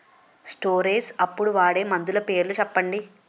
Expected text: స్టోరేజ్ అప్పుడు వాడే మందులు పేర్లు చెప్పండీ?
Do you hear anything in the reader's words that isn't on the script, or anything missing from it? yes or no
no